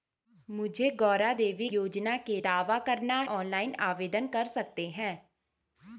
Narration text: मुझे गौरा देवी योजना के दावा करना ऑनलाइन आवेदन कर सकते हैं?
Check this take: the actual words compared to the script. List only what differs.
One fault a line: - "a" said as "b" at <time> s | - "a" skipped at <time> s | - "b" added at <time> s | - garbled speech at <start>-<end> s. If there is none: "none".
none